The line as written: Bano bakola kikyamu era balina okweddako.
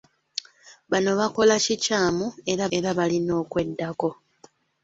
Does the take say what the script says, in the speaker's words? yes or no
no